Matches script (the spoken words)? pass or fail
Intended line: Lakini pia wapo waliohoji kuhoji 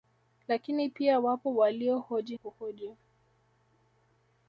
pass